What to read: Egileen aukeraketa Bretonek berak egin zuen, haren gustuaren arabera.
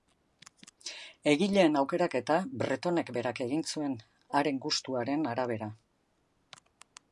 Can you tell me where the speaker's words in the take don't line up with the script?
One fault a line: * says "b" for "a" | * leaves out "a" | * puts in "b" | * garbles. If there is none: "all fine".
all fine